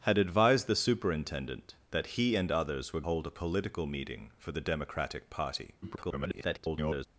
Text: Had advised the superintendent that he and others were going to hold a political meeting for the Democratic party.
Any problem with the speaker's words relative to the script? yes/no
yes